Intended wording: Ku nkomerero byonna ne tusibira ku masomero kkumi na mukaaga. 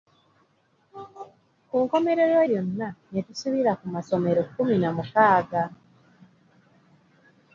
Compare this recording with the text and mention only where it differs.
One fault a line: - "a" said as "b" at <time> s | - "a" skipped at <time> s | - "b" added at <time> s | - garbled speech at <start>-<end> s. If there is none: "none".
none